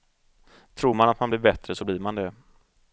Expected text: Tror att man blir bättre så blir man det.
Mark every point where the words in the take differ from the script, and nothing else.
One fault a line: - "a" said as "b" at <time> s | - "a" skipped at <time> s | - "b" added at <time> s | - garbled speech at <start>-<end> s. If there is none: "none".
- "man" added at 0.9 s